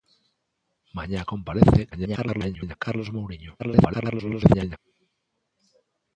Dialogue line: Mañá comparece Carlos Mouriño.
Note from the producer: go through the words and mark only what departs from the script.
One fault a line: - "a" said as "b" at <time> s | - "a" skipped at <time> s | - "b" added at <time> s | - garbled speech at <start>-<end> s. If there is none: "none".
- garbled speech at 1.9-2.8 s
- garbled speech at 3.6-4.8 s